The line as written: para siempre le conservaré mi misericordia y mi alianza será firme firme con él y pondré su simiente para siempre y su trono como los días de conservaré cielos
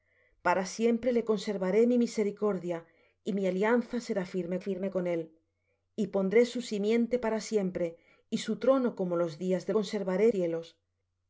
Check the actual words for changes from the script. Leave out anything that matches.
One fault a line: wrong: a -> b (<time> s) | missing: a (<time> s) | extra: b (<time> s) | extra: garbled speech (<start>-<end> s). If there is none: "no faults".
no faults